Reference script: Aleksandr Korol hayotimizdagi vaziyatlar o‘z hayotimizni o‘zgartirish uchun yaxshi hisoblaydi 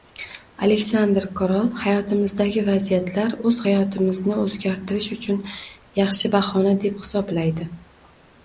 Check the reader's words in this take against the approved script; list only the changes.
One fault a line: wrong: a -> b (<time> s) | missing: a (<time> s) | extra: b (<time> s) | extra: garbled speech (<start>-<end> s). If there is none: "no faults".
extra: bahona deb (6.4 s)